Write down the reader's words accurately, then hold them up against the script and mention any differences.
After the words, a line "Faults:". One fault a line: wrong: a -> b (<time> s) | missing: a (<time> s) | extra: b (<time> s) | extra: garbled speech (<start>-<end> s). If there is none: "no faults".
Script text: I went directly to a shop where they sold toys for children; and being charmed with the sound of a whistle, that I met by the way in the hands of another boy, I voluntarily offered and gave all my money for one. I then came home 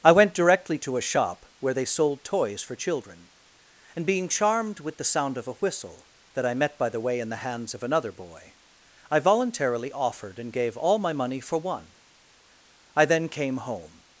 I went directly to a shop where they sold toys for children; and being charmed with the sound of a whistle, that I met by the way in the hands of another boy, I voluntarily offered and gave all my money for one. I then came home
Faults:
no faults